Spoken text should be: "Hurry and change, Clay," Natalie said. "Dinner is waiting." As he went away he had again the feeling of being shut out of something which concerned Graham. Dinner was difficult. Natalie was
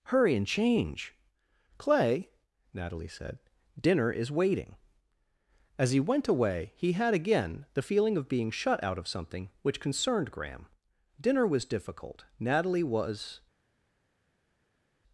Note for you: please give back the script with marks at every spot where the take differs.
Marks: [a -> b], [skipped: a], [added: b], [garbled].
"Hurry and change, Clay," Natalie said. "Dinner is waiting." As he went away he had again the feeling of being shut out of something which concerned Graham. Dinner was difficult. Natalie was